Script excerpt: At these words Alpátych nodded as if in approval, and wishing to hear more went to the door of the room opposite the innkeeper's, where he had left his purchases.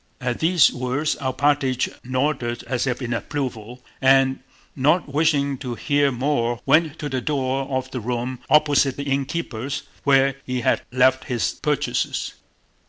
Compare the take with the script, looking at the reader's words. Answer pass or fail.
fail